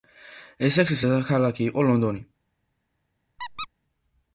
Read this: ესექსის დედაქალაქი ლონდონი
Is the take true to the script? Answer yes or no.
no